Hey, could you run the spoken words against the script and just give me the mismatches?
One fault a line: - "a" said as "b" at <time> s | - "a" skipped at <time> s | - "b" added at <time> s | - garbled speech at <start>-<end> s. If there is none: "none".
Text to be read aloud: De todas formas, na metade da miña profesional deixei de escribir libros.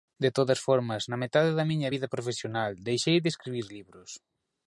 - "vida" added at 1.9 s